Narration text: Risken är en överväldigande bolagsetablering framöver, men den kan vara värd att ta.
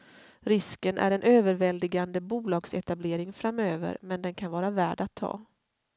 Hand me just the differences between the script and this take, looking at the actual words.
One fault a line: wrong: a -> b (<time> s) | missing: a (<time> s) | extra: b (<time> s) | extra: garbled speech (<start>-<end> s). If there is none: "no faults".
no faults